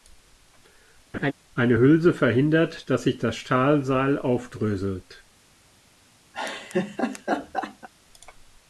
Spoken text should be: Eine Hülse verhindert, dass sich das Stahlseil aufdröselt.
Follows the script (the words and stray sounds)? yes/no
no